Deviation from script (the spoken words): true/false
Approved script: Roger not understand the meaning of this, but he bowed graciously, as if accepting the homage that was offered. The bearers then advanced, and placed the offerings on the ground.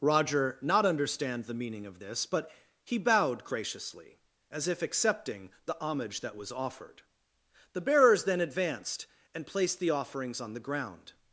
false